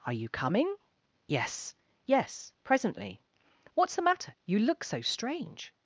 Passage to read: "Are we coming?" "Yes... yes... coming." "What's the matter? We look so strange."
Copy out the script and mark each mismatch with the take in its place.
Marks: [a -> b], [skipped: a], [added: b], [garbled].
"Are [we -> you] coming?" "Yes... yes... [coming." -> presently] "What's the matter? [We -> You] look so strange."